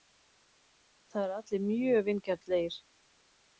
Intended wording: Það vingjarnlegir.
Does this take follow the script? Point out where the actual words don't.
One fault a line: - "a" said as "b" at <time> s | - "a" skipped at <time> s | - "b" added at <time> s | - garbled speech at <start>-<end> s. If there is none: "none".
- "eru allir mjög" added at 1.3 s